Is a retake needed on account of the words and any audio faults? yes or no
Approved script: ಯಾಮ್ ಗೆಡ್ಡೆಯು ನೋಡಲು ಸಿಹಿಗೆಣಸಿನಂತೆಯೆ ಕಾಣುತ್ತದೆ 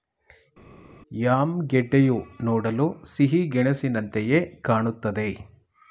no